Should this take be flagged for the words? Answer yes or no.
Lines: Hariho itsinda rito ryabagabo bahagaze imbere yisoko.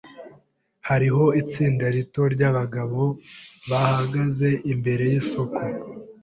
no